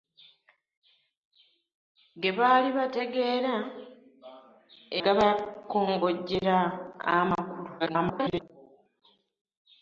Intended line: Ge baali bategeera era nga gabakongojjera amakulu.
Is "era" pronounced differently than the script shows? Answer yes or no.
yes